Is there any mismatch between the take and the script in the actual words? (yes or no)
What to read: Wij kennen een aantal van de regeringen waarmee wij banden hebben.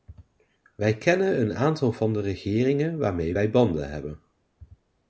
no